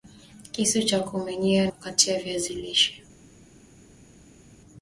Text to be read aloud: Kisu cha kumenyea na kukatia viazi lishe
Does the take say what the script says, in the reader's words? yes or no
no